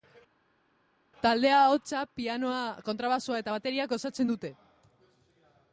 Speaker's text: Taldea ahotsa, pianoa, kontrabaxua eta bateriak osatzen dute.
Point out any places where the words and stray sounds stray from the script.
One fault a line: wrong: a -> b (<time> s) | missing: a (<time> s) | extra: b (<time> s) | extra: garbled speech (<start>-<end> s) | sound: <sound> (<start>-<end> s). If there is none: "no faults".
no faults